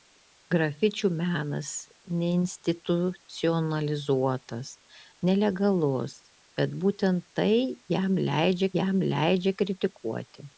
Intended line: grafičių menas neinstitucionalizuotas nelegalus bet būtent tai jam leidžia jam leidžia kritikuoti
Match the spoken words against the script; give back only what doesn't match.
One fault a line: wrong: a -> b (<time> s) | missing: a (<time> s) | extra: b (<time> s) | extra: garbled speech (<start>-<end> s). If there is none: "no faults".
no faults